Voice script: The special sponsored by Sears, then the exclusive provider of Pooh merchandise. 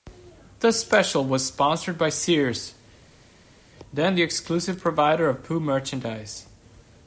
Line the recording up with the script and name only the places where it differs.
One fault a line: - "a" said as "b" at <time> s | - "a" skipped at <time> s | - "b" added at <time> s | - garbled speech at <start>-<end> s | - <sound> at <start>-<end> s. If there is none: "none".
- "was" added at 1.2 s